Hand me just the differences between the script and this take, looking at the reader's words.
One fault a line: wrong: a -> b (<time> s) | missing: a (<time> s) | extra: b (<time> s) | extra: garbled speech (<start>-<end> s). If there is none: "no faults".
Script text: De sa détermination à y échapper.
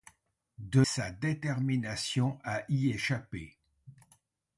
no faults